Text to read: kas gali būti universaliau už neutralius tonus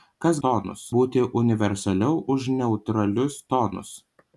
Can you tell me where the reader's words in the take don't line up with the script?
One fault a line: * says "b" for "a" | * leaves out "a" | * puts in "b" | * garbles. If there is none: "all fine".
* says "tonus" for "gali"